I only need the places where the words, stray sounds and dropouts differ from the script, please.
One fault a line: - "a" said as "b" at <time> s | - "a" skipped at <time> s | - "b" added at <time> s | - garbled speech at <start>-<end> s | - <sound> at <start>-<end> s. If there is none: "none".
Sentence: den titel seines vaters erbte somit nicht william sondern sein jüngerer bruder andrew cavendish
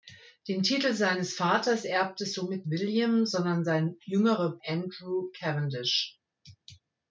- "nicht" skipped at 2.6 s
- "bruder" skipped at 4.6 s